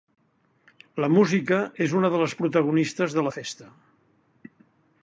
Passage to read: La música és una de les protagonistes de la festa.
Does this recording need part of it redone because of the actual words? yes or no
no